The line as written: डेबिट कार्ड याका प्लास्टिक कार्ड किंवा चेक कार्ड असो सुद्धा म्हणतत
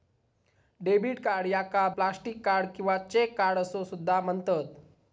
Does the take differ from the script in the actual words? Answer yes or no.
no